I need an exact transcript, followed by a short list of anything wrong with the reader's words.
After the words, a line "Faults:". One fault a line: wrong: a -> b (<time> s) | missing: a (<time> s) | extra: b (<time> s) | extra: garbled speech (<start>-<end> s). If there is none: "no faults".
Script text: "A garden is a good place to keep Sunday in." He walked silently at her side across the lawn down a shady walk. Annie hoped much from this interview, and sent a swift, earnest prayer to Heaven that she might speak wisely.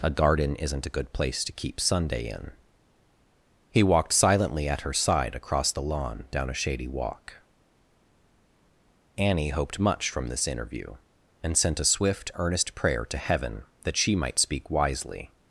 "A garden isn't a good place to keep Sunday in." He walked silently at her side across the lawn down a shady walk. Annie hoped much from this interview, and sent a swift, earnest prayer to Heaven that she might speak wisely.
Faults:
wrong: is -> isn't (0.6 s)